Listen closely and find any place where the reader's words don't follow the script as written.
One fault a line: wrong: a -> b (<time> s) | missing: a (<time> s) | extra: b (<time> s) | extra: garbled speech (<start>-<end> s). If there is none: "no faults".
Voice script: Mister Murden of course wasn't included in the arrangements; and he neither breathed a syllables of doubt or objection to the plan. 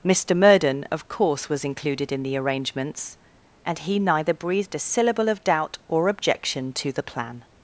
wrong: wasn't -> was (1.5 s)
wrong: syllables -> syllable (4.8 s)